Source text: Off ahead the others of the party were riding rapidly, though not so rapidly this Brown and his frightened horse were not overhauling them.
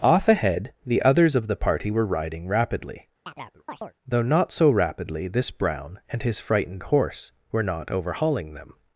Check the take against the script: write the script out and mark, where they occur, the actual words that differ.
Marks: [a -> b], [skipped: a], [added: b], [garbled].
Off ahead the others of the party were riding rapidly, though not so rapidly this Brown and his frightened horse were not overhauling them.